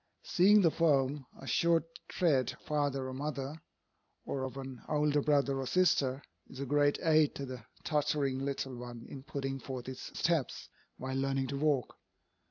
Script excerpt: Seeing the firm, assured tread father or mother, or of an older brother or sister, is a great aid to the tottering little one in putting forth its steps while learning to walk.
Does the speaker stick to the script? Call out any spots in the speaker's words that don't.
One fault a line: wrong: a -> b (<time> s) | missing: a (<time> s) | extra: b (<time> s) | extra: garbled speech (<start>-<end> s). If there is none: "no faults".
no faults